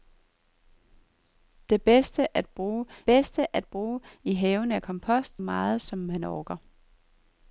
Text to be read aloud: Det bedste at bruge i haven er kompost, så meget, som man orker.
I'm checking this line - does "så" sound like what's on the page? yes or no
no